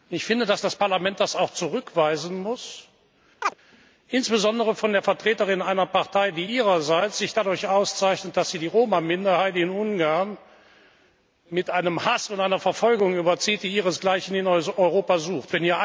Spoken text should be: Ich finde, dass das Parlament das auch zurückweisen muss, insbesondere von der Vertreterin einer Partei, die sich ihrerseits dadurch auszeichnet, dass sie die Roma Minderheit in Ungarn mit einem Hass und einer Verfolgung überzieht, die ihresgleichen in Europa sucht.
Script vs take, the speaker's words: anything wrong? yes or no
no